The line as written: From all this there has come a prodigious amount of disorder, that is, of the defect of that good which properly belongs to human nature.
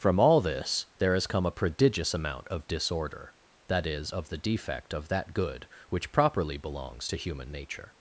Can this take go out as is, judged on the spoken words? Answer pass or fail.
pass